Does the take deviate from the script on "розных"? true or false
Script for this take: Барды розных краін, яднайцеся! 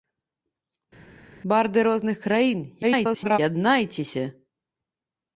false